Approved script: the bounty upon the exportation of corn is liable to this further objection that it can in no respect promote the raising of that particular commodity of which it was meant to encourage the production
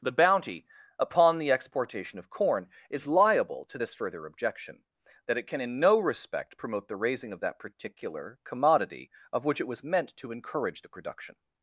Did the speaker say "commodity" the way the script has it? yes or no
yes